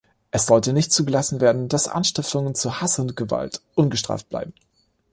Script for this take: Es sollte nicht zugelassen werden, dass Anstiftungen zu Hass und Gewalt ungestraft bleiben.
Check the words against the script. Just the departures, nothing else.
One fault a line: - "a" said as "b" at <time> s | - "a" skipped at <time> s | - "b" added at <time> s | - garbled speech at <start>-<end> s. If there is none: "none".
none